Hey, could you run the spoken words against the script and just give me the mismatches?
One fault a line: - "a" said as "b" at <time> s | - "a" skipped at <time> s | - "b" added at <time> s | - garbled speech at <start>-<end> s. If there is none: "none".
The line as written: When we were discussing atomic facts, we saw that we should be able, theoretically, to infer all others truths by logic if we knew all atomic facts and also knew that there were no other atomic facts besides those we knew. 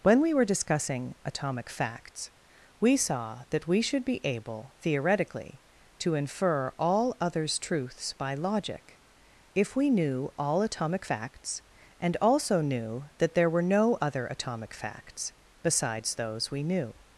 none